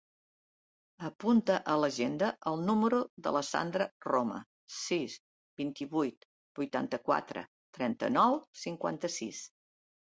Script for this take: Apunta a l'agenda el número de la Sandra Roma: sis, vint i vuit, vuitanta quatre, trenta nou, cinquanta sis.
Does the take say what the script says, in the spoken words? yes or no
yes